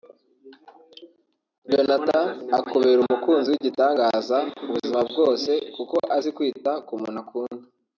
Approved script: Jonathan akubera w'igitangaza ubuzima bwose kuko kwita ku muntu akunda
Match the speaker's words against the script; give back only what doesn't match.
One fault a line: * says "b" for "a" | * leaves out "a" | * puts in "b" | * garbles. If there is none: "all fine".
* puts in "umukunzi"
* puts in "azi"